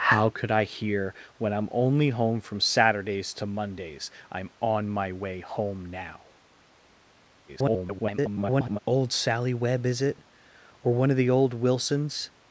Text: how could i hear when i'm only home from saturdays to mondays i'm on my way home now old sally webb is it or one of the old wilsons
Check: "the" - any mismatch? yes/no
no